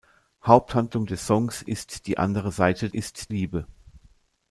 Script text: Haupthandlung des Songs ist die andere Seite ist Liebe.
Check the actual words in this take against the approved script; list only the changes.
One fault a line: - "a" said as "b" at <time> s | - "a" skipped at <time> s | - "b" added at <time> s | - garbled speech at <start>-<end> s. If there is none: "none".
none